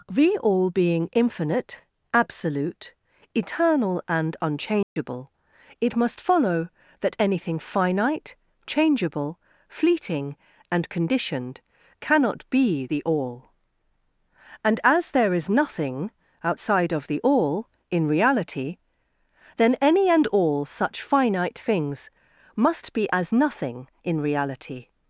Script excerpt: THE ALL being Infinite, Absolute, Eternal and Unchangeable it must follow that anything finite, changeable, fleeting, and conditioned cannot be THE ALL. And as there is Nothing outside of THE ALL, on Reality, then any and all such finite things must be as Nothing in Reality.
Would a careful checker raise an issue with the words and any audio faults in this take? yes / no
yes